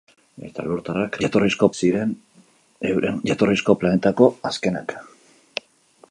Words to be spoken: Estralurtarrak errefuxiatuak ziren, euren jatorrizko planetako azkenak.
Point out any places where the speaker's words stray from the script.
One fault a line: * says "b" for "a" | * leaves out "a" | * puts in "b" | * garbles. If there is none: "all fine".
* says "jatorrizko" for "errefuxiatuak"